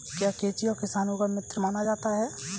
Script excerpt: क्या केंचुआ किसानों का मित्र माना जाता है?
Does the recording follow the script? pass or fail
pass